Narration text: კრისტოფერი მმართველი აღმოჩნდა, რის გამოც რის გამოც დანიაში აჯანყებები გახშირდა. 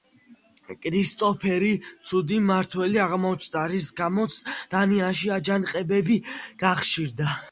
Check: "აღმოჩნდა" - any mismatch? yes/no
no